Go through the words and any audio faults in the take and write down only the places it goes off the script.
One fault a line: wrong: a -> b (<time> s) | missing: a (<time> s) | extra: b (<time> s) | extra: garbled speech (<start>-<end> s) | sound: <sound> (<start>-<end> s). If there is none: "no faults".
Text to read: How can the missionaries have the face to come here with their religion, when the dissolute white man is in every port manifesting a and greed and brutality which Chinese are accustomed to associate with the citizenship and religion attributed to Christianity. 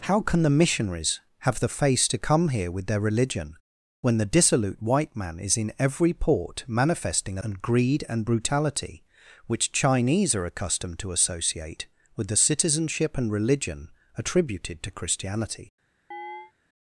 sound: chirp (16.1-16.5 s)